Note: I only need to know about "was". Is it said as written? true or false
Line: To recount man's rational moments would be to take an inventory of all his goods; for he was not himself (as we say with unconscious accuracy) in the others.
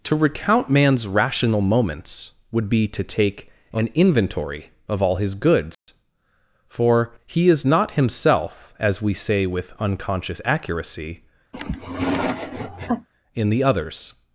false